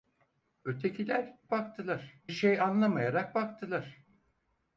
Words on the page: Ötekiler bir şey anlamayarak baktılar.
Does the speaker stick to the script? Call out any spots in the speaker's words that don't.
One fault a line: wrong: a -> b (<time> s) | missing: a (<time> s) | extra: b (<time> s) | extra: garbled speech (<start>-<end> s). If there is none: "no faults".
wrong: bir -> baktılar (1.5 s)